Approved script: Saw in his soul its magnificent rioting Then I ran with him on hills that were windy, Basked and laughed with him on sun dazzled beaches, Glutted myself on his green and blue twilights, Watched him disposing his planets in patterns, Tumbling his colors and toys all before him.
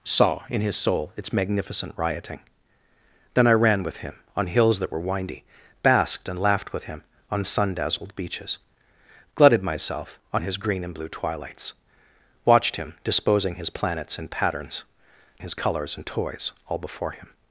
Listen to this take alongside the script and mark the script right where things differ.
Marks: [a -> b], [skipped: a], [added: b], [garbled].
Saw in his soul its magnificent rioting Then I ran with him on hills that were windy, Basked and laughed with him on sun dazzled beaches, Glutted myself on his green and blue twilights, Watched him disposing his planets in patterns, [skipped: Tumbling] his colors and toys all before him.